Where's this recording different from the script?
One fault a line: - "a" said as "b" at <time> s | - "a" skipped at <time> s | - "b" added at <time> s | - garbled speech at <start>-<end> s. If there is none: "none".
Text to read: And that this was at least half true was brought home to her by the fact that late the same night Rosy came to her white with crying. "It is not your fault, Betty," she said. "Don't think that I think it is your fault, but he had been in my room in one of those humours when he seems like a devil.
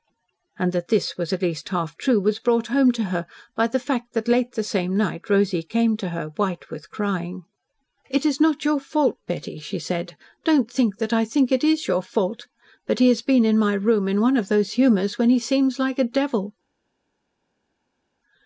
- "had" said as "has" at 13.1 s